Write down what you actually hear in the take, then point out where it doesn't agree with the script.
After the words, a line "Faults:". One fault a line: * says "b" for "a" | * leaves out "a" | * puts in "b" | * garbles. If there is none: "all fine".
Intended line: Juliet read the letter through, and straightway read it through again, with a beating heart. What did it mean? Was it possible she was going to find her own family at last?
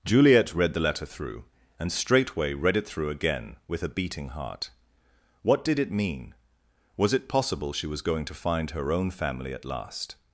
Juliet read the letter through, and straightway read it through again, with a beating heart. What did it mean? Was it possible she was going to find her own family at last?
Faults:
all fine